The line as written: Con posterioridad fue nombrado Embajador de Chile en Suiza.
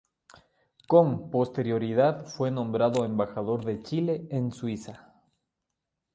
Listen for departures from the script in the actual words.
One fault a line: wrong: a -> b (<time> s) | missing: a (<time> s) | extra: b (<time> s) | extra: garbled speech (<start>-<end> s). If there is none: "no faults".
no faults